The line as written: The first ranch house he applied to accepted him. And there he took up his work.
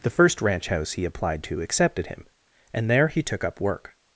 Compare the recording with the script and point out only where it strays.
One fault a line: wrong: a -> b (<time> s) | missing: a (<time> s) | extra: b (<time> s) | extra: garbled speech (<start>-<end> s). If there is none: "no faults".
missing: his (3.6 s)